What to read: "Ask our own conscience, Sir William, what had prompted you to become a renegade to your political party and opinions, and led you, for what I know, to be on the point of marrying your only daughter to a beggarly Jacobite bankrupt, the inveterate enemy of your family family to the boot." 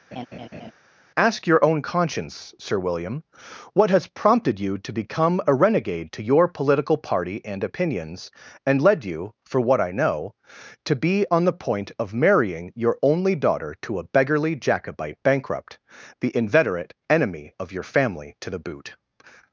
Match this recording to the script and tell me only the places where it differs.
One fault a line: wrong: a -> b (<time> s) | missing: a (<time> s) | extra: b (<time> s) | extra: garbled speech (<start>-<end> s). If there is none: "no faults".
wrong: our -> your (1.5 s)
wrong: had -> has (3.9 s)
missing: family (18.4 s)